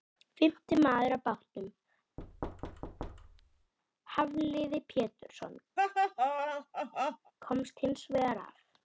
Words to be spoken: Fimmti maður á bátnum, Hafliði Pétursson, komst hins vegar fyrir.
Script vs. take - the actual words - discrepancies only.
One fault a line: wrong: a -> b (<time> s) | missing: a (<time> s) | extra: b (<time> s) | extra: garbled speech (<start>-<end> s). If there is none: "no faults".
wrong: fyrir -> af (8.5 s)